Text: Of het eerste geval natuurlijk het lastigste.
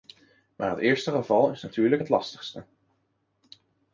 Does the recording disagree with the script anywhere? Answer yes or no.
yes